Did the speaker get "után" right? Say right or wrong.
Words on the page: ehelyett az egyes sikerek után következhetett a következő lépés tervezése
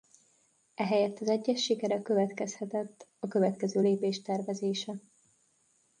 wrong